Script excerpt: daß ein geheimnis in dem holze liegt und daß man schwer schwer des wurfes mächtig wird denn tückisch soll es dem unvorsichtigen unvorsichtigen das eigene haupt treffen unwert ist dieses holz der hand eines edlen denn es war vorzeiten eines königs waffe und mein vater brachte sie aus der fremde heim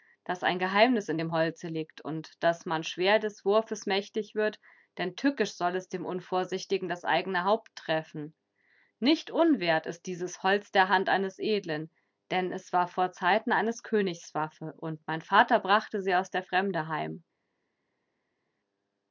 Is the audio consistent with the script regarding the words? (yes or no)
no